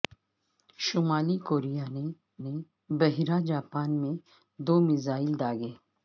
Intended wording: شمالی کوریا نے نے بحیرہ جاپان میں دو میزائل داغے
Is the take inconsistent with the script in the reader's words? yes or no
no